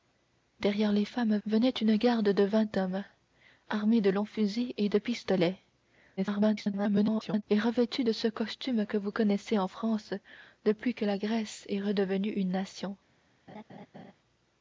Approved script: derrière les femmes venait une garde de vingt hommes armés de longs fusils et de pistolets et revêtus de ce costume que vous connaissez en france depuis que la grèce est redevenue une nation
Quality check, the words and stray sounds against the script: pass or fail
fail